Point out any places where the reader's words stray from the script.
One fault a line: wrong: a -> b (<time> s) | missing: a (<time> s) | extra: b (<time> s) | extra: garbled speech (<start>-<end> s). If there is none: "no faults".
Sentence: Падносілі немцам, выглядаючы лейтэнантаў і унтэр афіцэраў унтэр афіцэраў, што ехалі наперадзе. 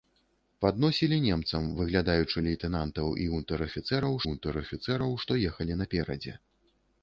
no faults